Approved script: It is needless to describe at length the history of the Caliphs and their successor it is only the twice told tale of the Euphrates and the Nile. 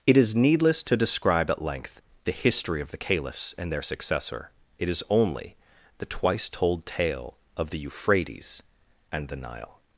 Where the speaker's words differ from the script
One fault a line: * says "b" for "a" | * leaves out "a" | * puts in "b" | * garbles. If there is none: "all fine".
all fine